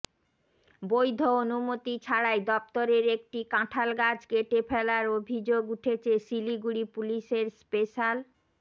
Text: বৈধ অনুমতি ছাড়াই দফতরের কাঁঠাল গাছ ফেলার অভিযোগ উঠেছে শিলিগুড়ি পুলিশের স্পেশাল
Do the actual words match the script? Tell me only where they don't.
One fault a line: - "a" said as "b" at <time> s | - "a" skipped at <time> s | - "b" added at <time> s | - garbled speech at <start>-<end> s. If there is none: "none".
- "একটি" added at 3.1 s
- "কেটে" added at 4.3 s